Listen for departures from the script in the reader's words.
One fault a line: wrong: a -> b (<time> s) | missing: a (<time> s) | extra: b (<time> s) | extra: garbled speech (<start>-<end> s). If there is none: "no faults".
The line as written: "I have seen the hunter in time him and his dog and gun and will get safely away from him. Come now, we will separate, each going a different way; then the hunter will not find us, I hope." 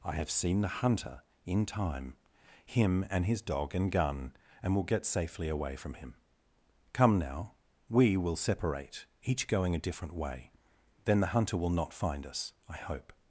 no faults